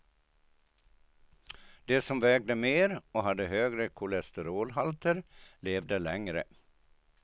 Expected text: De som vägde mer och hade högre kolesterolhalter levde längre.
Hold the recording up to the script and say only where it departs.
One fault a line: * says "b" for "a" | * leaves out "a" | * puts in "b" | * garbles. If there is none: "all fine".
all fine